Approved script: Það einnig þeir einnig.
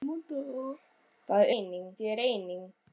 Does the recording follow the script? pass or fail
pass